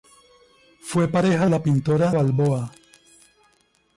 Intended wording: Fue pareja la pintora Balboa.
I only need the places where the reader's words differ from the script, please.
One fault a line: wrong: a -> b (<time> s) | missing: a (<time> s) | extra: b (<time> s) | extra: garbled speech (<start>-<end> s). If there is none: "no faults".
no faults